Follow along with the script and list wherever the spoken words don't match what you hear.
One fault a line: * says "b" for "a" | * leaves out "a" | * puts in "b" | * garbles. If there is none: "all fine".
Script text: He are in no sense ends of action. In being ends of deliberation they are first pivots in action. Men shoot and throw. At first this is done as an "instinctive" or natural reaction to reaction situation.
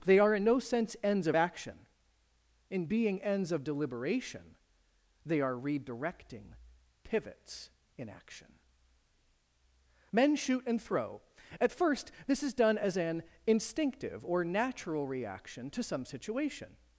* says "They" for "He"
* says "redirecting" for "first"
* says "some" for "reaction"